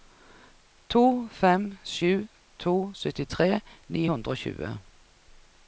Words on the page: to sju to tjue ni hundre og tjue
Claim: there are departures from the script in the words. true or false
true